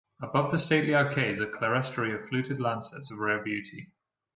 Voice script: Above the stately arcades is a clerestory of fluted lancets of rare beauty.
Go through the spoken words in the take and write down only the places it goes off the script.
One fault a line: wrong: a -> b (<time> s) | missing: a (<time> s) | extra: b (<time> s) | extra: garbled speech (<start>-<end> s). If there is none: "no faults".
missing: is (1.4 s)